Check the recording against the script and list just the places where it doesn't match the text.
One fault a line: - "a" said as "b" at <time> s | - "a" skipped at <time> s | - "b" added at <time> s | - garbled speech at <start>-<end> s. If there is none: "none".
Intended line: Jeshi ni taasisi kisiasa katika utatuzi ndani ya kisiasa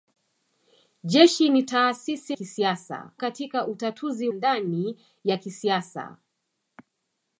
none